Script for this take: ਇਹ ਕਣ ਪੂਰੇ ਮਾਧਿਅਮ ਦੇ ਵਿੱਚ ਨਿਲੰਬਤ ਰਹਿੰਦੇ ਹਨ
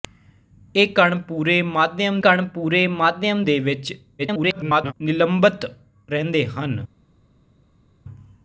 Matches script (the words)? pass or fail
fail